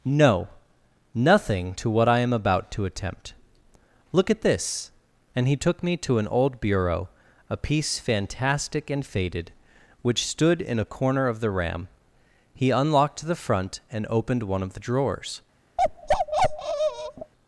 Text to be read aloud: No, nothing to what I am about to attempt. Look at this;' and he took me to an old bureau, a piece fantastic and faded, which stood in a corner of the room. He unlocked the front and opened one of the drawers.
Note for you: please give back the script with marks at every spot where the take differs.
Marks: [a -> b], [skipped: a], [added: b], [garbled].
No, nothing to what I am about to attempt. Look at this;' and he took me to an old bureau, a piece fantastic and faded, which stood in a corner of the [room. -> ram] He unlocked the front and opened one of the drawers.